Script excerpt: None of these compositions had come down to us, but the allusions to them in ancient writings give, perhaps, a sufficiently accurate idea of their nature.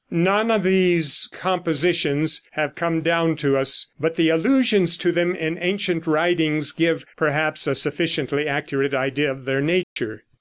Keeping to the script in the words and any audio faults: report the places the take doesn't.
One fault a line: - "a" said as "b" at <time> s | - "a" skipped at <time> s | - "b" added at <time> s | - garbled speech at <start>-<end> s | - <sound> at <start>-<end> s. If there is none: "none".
- "had" said as "have" at 2.5 s
- dropout at 9.8-10.0 s